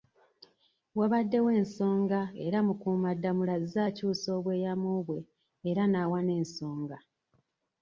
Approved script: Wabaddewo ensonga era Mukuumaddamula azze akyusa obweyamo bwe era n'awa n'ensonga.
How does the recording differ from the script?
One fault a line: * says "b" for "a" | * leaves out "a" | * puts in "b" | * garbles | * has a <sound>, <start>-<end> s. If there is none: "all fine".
all fine